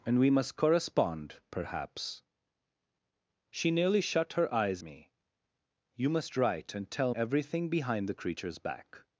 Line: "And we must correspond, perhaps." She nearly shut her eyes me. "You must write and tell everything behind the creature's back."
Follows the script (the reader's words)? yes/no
yes